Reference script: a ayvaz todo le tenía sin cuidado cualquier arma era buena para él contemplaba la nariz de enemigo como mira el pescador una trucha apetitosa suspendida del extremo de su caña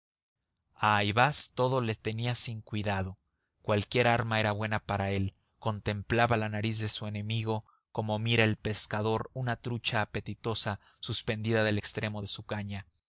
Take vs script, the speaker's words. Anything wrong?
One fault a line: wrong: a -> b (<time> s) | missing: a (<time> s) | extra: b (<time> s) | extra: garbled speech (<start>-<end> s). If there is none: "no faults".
extra: su (6.9 s)